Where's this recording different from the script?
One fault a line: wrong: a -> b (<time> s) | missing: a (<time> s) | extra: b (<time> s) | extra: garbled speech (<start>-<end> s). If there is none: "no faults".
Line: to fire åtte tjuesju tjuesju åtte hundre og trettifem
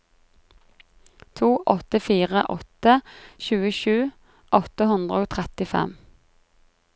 extra: åtte (1.7 s)
missing: tjuesju (4.0 s)